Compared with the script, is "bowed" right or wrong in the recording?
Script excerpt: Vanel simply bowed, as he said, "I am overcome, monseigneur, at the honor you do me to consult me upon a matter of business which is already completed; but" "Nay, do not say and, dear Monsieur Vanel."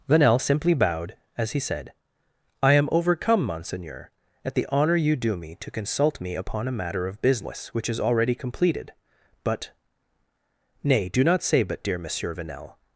right